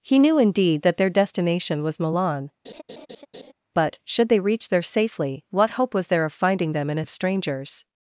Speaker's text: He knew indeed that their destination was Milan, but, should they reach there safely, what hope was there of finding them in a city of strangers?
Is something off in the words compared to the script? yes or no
yes